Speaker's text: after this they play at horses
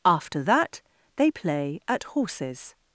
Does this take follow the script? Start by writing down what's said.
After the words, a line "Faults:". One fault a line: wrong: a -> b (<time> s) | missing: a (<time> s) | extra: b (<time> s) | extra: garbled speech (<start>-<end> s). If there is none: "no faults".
after that they play at horses
Faults:
wrong: this -> that (0.4 s)